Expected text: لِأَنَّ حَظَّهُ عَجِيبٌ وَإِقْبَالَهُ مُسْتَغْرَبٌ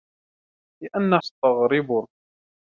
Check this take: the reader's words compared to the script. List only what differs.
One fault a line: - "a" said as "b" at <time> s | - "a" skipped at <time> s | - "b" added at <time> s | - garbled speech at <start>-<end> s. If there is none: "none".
- "حَظَّهُ عَجِيبٌ وَإِقْبَالَهُ" skipped at 1.2 s